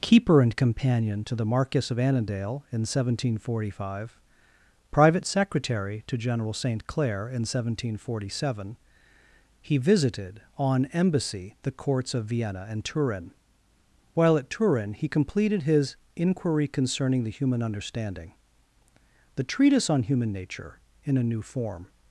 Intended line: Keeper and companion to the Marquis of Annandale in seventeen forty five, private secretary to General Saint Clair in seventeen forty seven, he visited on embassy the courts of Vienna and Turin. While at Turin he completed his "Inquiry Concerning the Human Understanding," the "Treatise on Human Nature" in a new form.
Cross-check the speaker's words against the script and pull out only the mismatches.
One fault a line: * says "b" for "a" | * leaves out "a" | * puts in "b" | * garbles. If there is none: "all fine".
all fine